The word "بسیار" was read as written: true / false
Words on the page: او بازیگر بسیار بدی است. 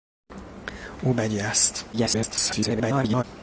false